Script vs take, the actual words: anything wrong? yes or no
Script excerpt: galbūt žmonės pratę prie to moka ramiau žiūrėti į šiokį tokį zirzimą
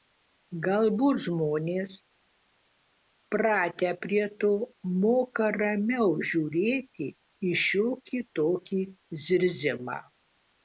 no